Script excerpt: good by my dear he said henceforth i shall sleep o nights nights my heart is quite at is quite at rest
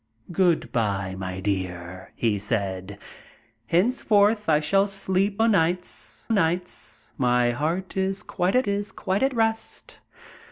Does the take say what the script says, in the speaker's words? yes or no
yes